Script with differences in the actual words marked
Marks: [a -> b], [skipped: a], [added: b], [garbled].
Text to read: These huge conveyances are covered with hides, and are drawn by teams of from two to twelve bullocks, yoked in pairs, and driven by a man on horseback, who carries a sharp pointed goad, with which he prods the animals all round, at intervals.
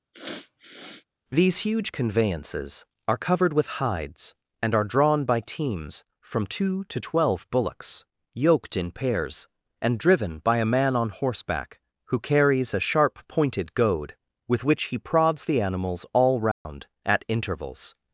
These huge conveyances are covered with hides, and are drawn by teams [skipped: of] from two to twelve bullocks, yoked in pairs, and driven by a man on horseback, who carries a sharp pointed goad, with which he prods the animals all round, at intervals.